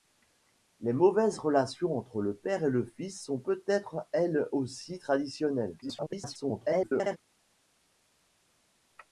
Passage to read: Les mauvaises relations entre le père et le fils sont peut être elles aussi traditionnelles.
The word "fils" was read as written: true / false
true